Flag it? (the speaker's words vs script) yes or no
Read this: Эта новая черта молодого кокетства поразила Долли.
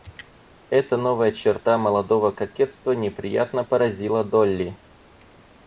yes